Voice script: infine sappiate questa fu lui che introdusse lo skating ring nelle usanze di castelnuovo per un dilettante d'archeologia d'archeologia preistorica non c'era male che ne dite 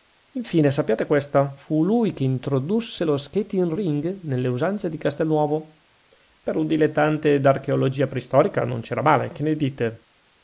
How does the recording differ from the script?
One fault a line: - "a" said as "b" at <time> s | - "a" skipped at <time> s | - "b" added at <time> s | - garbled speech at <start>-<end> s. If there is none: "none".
- "d'archeologia" skipped at 8.1 s